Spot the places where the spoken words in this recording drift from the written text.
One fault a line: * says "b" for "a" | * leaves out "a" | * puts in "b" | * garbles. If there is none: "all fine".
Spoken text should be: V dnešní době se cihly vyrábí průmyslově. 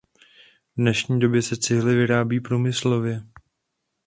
all fine